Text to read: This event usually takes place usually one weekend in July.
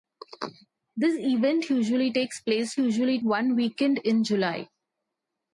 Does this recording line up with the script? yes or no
yes